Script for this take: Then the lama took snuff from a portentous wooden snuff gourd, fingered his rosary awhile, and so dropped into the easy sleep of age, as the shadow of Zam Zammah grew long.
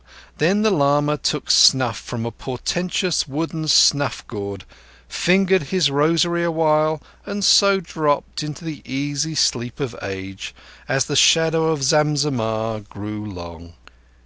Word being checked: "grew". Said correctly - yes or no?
yes